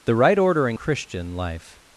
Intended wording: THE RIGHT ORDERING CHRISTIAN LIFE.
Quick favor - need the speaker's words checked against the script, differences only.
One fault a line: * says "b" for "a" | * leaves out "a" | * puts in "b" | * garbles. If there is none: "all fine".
all fine